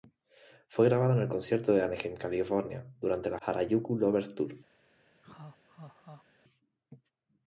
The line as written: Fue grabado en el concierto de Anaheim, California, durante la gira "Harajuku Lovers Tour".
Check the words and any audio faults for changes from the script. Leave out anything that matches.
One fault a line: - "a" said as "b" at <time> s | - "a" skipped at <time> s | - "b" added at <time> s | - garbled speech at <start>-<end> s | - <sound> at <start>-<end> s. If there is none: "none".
- "gira" skipped at 3.4 s
- laugh at 5.2-6.3 s